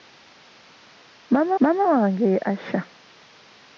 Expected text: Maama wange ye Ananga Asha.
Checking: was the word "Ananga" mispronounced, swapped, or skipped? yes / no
yes